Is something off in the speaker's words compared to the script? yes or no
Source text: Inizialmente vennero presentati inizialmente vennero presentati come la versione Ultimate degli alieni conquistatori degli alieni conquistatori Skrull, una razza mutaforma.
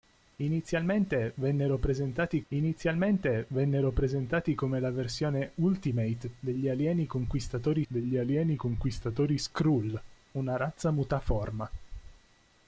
no